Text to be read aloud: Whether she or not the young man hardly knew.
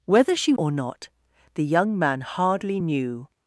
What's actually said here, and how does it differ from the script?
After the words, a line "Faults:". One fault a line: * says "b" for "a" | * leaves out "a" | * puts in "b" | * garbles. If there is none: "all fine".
Whether she or not the young man hardly knew.
Faults:
all fine